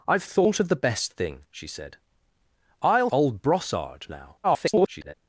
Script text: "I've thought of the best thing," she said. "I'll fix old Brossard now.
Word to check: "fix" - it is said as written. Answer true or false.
false